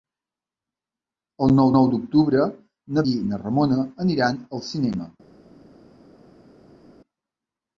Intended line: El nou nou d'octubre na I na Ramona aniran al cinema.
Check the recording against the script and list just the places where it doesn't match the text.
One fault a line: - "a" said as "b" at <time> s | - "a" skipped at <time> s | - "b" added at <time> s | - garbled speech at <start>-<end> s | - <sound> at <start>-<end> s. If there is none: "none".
none